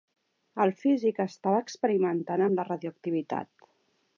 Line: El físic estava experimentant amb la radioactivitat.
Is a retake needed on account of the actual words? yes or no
no